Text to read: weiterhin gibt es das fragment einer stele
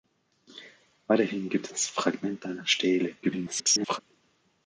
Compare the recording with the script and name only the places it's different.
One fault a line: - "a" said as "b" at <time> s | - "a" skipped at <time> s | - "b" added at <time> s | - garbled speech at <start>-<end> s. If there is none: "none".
- "es" skipped at 1.7 s
- garbled speech at 3.2-4.0 s